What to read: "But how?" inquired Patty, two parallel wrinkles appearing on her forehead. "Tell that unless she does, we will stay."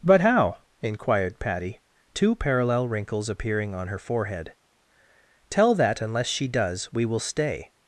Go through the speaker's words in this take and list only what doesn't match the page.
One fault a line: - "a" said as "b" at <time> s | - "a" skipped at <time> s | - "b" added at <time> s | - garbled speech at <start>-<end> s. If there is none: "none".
none